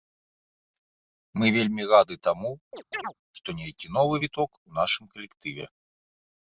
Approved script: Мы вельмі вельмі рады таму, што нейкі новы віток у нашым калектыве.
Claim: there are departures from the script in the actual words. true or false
true